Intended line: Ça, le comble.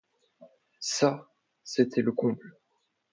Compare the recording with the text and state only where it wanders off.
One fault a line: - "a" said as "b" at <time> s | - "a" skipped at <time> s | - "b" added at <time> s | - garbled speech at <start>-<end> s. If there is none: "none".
- "c'était" added at 1.6 s